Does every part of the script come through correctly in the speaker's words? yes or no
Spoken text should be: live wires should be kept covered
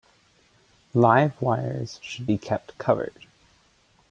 yes